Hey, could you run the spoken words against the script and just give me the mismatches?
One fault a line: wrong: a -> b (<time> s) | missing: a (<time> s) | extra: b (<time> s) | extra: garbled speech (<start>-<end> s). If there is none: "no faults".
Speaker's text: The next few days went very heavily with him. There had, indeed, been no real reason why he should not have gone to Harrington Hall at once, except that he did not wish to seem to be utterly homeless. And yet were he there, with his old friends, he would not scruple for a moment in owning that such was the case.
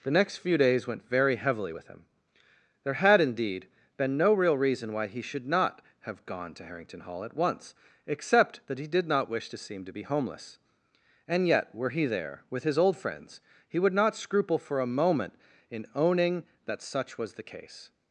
missing: utterly (10.0 s)